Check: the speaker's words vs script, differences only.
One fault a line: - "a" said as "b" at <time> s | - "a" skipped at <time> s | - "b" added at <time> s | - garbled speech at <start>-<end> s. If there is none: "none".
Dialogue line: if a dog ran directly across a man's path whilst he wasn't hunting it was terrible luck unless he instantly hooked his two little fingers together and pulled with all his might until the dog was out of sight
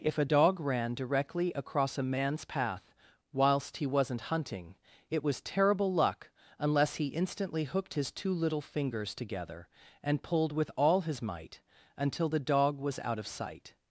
none